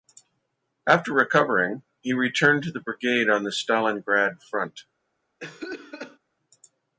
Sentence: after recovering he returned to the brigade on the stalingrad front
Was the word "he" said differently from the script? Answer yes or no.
no